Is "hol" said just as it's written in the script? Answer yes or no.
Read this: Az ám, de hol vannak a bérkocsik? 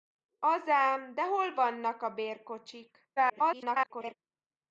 yes